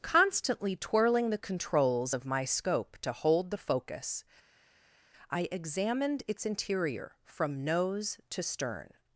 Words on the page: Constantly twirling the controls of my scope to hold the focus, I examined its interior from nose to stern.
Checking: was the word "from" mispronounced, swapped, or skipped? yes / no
no